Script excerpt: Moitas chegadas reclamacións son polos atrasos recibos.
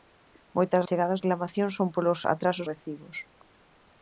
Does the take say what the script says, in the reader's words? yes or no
yes